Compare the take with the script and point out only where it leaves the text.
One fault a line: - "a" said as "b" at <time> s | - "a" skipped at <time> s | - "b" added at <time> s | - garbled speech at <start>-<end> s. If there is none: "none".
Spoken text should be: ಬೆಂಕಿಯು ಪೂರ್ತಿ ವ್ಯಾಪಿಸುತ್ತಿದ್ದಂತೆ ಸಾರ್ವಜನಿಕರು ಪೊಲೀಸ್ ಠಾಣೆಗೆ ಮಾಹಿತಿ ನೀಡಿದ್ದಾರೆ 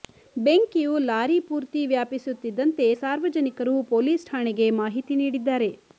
- "ಲಾರಿ" added at 1.0 s